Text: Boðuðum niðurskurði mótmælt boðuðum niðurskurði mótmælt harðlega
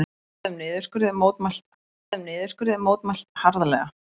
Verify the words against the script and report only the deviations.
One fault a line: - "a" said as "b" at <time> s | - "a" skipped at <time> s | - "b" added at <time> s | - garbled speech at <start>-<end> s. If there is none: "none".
none